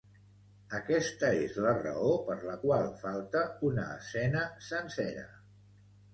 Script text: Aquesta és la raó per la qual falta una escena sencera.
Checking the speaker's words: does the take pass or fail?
pass